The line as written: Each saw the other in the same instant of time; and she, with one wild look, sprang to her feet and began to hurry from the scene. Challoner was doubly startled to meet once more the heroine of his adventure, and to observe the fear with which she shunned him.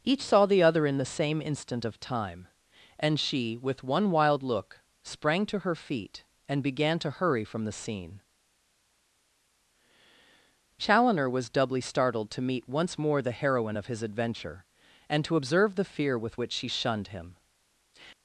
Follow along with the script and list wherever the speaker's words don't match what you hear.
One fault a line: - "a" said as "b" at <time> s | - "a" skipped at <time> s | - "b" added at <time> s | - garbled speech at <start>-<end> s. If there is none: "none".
none